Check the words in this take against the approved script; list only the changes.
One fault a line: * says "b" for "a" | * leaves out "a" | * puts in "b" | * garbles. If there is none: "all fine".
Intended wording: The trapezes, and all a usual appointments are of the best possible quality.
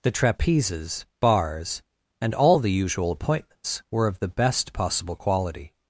* puts in "bars"
* says "the" for "a"
* says "were" for "are"